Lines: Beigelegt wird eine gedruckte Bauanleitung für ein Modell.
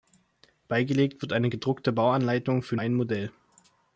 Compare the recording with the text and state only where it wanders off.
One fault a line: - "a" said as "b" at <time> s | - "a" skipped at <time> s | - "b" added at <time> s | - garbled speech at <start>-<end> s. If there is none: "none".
none